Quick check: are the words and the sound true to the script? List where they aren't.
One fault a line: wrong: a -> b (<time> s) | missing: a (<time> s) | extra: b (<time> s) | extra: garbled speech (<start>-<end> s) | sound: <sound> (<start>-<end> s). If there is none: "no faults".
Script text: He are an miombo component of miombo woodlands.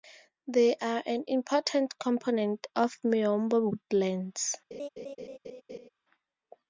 wrong: He -> They (0.5 s)
wrong: miombo -> important (1.3 s)
sound: laugh (4.7-5.9 s)